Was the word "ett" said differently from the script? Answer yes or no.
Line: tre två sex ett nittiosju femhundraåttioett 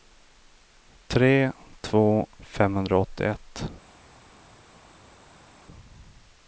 yes